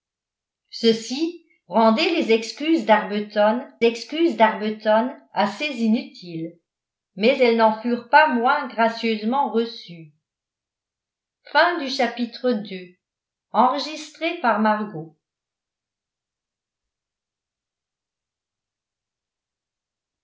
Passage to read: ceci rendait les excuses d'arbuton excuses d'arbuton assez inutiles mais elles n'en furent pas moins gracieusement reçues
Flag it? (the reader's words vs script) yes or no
no